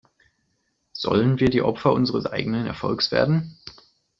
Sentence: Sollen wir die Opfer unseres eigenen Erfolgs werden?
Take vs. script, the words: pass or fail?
pass